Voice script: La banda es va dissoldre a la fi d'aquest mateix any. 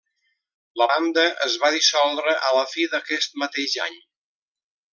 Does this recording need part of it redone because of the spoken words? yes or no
no